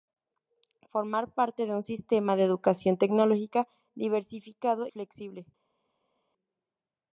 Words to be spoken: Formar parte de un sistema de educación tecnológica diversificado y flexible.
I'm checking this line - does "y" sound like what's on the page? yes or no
no